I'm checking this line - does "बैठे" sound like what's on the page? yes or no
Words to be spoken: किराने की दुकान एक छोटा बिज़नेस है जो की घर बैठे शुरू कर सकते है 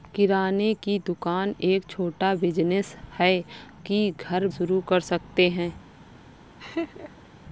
no